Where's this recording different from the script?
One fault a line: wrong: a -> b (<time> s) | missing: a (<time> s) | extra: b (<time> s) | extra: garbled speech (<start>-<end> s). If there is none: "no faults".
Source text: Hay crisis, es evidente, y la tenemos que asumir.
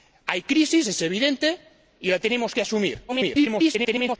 extra: garbled speech (3.1-4.2 s)